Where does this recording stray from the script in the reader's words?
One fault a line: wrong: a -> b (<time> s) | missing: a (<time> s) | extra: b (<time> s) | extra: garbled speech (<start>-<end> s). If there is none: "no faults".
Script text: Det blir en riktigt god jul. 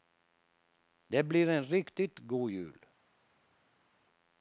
no faults